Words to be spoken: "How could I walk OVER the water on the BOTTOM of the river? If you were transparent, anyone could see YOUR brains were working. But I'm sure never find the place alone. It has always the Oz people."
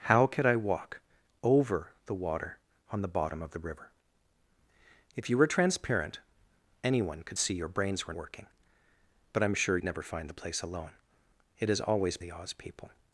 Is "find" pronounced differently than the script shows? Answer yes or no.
no